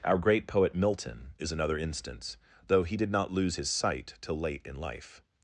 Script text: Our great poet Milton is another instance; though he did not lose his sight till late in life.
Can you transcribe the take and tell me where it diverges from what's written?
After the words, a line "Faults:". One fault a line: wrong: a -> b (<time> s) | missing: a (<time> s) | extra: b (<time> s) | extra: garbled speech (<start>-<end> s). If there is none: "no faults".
Our great poet Milton is another instance; though he did not lose his sight till late in life.
Faults:
no faults